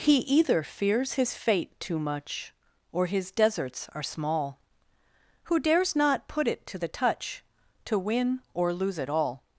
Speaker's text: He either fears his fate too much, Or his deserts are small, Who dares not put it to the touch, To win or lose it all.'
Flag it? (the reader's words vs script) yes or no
no